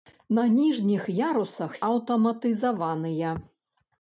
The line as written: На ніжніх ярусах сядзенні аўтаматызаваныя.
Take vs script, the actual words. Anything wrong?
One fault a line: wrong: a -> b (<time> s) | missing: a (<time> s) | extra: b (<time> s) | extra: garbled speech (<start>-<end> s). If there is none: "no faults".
missing: сядзенні (1.8 s)